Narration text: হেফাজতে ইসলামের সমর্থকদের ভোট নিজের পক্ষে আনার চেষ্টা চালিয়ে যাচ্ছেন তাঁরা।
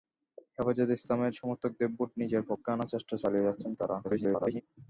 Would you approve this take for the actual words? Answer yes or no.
no